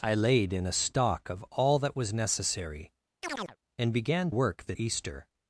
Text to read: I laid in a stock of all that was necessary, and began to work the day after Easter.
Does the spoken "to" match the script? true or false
false